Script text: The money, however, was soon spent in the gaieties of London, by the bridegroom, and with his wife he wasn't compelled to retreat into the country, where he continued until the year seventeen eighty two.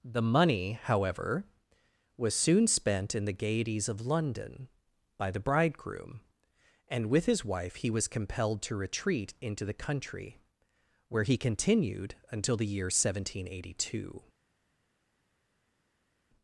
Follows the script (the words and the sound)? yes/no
no